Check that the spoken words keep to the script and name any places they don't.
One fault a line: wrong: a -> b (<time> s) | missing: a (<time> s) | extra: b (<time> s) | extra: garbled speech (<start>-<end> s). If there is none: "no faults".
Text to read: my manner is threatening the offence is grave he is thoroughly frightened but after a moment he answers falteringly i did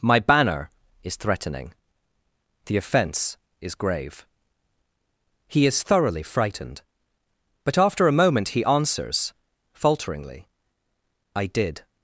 wrong: manner -> banner (0.2 s)